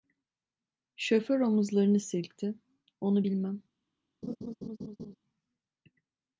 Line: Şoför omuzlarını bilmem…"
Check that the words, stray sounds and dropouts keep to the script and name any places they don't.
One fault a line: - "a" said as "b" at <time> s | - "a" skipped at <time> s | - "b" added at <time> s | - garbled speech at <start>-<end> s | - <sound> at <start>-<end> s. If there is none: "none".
- "silkti Onu" added at 2.0 s
- laugh at 4.2-5.2 s